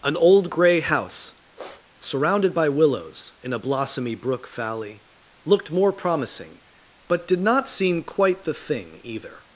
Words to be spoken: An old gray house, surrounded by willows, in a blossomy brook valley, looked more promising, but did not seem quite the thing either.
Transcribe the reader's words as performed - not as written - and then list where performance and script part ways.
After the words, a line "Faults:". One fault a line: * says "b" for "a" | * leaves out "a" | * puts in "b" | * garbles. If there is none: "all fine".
An old gray house, surrounded by willows, in a blossomy brook valley, looked more promising, but did not seem quite the thing either.
Faults:
all fine